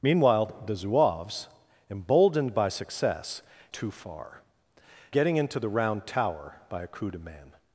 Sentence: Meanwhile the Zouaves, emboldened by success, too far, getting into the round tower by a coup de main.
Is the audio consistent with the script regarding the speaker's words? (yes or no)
yes